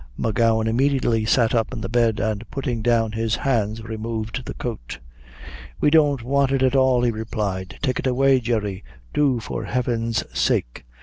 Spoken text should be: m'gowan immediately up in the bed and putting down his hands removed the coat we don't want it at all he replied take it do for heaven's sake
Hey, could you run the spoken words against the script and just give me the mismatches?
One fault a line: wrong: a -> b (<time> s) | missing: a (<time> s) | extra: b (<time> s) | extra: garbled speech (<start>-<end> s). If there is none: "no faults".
extra: sat (1.2 s)
extra: away jerry (8.1 s)